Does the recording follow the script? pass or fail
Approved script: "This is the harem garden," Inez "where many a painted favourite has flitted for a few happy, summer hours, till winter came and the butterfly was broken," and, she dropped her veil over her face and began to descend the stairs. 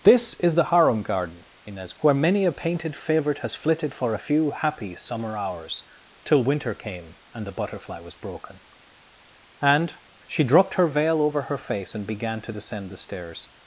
pass